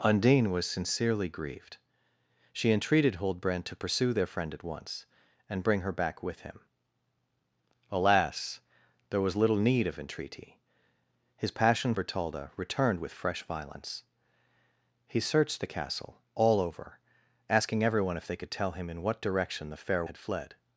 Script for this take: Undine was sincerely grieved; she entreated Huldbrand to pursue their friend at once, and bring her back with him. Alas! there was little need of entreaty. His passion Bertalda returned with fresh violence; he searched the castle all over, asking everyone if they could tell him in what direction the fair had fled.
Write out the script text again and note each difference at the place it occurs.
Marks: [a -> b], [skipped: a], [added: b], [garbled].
Undine was sincerely grieved; she entreated Huldbrand to pursue their friend at once, and bring her back with him. Alas! there was little need of entreaty. His passion Bertalda returned with fresh violence; he searched the castle all over, asking everyone if they could tell him in what direction the fair had fled.